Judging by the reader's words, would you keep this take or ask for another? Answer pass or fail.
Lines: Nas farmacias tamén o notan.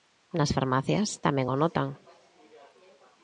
pass